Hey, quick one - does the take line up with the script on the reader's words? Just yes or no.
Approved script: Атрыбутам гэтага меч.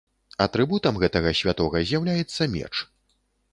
no